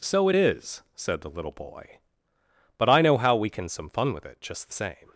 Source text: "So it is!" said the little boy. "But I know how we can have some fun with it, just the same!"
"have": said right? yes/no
no